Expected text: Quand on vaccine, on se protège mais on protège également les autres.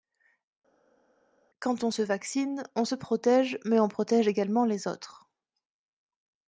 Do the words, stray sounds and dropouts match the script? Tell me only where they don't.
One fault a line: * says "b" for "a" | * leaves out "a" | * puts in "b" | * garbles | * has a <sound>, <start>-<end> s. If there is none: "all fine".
* puts in "se"